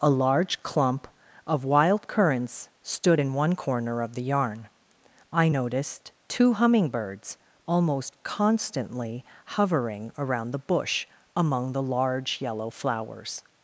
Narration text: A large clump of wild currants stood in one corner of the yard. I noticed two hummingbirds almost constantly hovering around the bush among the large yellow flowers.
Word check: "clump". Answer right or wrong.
right